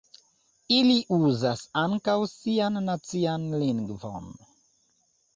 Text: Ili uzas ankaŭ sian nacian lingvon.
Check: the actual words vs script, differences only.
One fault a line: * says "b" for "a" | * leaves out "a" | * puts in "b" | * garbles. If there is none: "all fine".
all fine